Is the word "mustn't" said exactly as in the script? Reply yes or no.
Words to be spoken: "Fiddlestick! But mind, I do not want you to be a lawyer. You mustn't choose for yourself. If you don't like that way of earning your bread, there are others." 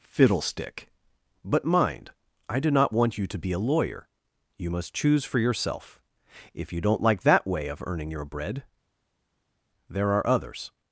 no